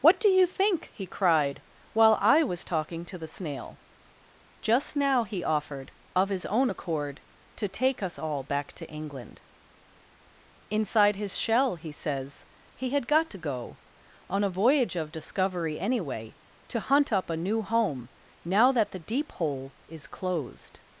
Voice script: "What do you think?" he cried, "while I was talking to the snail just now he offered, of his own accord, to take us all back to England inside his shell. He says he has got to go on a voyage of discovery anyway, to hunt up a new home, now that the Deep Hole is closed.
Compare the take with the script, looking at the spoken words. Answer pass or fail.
fail